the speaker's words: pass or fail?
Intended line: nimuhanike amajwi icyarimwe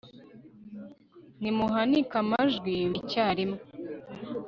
pass